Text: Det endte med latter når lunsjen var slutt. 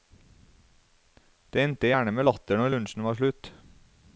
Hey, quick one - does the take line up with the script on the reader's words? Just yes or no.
no